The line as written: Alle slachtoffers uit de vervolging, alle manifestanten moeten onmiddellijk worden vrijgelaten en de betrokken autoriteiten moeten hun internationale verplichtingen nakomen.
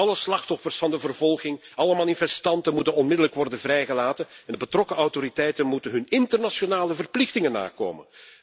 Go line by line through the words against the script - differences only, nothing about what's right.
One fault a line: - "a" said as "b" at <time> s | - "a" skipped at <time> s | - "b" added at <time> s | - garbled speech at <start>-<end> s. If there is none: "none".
- "uit" said as "van" at 0.8 s